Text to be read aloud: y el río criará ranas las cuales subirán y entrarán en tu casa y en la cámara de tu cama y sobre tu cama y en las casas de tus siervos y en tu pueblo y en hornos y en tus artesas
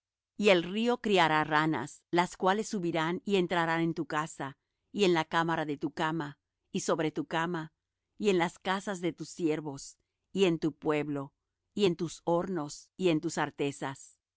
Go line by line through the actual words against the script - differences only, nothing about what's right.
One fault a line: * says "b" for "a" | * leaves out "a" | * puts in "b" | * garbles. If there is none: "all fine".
* puts in "tus"